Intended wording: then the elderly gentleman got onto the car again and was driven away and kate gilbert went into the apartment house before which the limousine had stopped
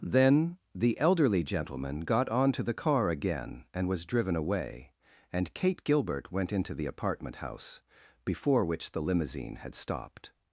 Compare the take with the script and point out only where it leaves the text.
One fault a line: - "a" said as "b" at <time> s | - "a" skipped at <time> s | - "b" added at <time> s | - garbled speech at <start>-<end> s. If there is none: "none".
none